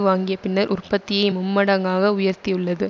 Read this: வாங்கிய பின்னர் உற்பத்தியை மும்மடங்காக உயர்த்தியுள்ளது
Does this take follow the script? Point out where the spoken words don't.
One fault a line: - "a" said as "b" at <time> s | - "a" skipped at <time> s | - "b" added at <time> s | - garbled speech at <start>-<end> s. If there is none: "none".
none